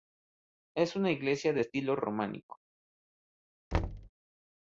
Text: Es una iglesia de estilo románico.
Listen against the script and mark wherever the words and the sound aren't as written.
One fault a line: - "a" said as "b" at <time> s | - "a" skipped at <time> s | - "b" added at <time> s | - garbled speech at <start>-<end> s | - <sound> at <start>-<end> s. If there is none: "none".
- thud at 3.7-4.1 s